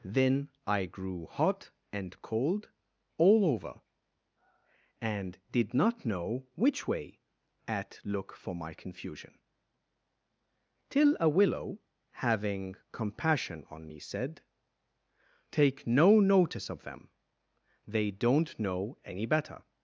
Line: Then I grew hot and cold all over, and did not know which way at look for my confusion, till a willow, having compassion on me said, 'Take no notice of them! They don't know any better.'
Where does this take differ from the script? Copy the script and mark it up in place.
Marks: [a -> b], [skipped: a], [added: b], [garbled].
Then I grew hot and cold all over, and did not know which way at look for my confusion, till a willow, having compassion on me said, 'Take no notice of them! They don't know any better.'